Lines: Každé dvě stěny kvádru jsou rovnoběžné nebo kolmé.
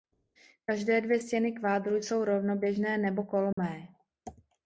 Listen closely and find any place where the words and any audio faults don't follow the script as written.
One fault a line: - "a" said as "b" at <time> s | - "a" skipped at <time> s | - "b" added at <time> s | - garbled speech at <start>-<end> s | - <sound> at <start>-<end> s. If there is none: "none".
- dropout at 3.5-3.6 s